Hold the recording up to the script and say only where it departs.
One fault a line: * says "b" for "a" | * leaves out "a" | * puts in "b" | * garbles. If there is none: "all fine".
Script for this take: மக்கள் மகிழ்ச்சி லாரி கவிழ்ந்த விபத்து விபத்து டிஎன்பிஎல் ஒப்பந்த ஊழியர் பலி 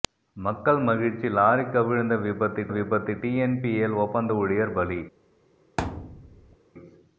all fine